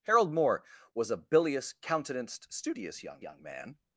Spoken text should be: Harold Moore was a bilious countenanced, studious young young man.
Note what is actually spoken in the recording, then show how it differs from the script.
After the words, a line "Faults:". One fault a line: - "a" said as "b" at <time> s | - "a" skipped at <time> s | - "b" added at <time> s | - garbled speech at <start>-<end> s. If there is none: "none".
Harold Moore was a bilious countenanced, studious young young man.
Faults:
none